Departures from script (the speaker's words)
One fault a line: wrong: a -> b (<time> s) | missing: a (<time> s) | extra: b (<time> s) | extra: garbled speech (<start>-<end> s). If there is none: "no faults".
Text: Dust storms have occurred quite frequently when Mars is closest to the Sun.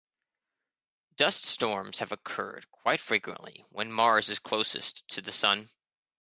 no faults